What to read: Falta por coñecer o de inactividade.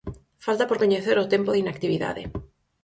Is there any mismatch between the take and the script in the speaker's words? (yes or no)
yes